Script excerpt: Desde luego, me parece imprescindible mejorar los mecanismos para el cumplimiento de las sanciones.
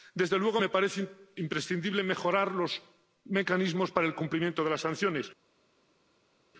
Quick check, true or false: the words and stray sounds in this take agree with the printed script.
true